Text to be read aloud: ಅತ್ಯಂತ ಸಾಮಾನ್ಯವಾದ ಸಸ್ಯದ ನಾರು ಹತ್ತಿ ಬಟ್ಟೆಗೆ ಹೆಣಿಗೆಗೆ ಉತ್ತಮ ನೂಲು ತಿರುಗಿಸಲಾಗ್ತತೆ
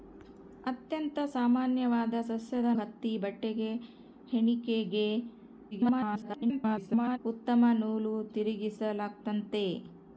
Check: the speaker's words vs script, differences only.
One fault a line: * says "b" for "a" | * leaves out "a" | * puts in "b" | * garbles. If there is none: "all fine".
* leaves out "ನಾರು"
* garbles